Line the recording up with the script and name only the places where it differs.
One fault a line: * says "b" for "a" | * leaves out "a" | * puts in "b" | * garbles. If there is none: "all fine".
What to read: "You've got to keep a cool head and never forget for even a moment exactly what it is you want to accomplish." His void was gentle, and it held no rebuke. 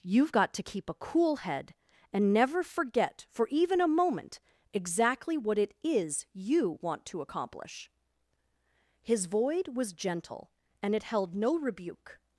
all fine